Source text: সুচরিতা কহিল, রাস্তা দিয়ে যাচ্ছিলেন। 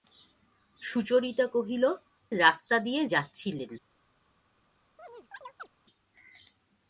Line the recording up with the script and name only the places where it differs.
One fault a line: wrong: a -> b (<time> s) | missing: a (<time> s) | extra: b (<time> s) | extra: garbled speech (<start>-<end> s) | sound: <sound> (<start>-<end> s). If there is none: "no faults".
sound: chirp (5.0-5.7 s)